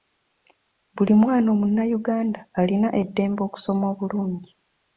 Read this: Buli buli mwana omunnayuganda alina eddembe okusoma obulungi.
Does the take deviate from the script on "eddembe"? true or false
false